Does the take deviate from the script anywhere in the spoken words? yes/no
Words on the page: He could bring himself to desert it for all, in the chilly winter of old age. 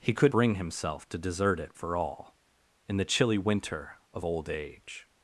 no